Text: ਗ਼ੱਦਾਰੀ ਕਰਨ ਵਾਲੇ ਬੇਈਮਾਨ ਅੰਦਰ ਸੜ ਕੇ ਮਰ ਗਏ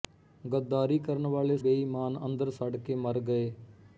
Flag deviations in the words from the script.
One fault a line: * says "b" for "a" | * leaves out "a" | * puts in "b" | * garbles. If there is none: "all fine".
all fine